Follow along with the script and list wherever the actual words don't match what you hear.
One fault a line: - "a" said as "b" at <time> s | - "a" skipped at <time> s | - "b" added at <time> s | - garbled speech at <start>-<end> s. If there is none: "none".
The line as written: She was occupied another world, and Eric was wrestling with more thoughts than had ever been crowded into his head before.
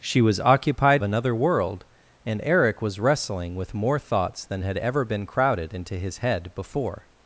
none